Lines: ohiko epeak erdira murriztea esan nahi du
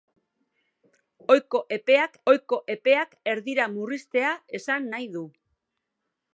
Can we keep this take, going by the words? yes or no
no